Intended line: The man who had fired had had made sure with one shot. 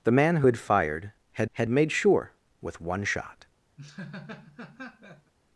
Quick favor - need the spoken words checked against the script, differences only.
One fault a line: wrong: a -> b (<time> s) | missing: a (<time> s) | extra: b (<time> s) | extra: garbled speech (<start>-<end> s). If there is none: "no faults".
no faults